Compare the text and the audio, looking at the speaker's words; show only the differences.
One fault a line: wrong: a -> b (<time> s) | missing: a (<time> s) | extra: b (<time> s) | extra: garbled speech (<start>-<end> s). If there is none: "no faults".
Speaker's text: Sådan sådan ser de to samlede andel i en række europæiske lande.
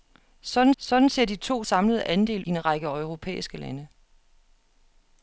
no faults